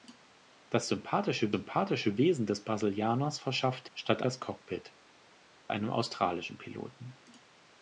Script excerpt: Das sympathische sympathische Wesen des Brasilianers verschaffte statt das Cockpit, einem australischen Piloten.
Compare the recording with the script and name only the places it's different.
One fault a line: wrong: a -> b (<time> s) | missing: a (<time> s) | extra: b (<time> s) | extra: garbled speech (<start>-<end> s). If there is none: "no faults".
no faults